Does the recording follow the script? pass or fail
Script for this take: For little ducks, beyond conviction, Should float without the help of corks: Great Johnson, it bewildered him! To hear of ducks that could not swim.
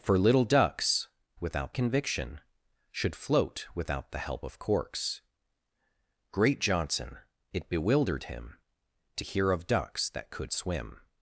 fail